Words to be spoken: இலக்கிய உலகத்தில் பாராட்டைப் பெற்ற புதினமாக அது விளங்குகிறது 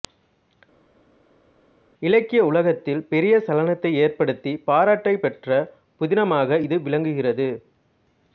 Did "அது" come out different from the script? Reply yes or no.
yes